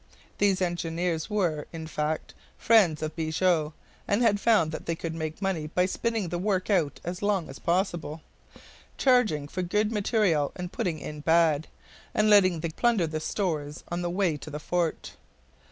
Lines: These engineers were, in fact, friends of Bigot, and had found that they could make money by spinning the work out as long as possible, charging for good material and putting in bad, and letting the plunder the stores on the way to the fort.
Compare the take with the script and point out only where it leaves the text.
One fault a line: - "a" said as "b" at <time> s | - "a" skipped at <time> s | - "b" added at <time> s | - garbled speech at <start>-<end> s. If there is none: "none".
none